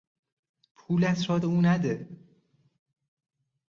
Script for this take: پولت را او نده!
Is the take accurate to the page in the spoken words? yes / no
yes